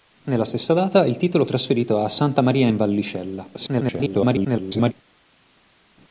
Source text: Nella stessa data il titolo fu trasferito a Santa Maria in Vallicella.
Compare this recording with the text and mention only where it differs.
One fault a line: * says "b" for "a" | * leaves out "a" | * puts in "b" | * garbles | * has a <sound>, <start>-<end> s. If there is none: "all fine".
* leaves out "fu"
* garbles